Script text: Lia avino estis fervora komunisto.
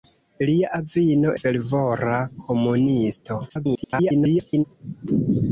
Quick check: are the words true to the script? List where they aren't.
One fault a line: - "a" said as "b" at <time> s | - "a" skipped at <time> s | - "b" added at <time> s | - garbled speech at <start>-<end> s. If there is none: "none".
- "estis" skipped at 1.3 s
- garbled speech at 3.5-4.6 s